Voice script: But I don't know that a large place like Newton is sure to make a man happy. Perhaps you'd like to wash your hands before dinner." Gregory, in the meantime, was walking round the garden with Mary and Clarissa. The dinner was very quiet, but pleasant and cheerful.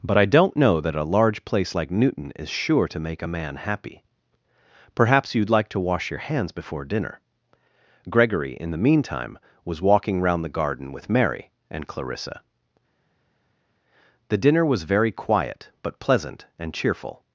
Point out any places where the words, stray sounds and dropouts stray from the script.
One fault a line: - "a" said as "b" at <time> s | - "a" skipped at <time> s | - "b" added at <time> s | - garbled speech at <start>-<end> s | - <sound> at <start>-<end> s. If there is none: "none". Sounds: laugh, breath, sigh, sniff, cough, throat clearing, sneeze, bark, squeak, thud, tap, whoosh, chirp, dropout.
none